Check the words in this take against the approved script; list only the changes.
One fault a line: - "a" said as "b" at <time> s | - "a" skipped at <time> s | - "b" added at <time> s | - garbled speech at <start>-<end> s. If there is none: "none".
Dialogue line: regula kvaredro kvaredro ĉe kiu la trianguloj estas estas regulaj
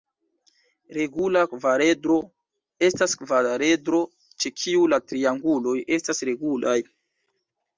- "estas" added at 2.9 s
- "estas" skipped at 6.2 s